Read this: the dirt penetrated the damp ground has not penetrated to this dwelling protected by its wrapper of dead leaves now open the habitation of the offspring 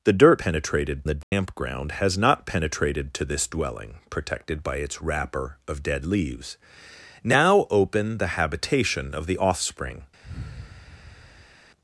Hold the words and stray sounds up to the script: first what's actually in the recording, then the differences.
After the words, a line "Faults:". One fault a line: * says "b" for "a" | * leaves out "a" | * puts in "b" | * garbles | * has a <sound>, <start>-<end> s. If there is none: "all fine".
the dirt penetrated the damp ground has not penetrated to this dwelling protected by its wrapper of dead leaves now open the habitation of the offspring
Faults:
* has a dropout, 1.2-1.3 s
* has a sigh, 10.2-11.6 s